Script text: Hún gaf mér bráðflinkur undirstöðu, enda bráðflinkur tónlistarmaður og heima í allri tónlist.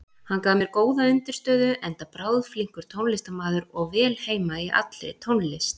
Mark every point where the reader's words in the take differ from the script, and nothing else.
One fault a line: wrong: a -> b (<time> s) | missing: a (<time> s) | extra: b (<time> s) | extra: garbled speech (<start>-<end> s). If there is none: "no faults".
wrong: Hún -> Hann (0.3 s)
wrong: bráðflinkur -> góða (0.8 s)
extra: vel (4.0 s)